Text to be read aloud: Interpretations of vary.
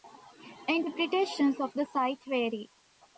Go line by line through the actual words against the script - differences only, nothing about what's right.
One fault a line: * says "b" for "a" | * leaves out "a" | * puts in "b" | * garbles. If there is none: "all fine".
* puts in "the site"